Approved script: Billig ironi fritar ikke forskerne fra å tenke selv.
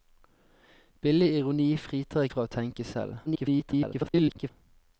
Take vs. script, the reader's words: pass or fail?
fail